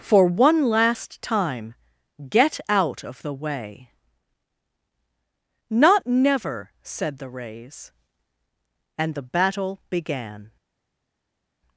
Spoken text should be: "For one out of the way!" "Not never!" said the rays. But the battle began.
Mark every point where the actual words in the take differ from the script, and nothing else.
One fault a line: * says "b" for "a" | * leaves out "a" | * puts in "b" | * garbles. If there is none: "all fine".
* puts in "last time get"
* says "And" for "But"